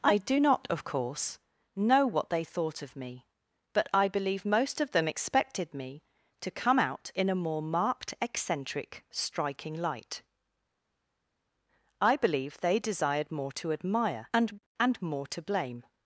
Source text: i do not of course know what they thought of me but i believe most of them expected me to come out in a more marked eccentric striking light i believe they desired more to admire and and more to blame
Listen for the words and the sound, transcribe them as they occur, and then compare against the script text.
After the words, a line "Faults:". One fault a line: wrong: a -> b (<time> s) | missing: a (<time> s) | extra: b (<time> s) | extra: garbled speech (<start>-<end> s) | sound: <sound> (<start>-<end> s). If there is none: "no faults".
i do not of course know what they thought of me but i believe most of them expected me to come out in a more marked eccentric striking light i believe they desired more to admire and and more to blame
Faults:
no faults